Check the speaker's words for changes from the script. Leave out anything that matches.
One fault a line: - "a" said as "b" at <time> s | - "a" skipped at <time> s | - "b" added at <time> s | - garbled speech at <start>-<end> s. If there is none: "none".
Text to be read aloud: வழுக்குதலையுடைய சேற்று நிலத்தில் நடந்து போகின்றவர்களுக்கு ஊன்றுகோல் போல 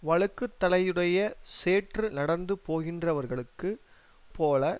- "நிலத்தில்" skipped at 2.1 s
- "ஊன்றுகோல்" skipped at 3.7 s